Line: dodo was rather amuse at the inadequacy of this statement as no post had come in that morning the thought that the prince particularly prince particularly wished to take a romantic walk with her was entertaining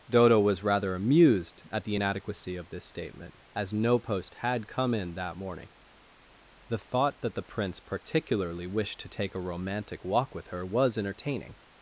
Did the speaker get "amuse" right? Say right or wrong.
wrong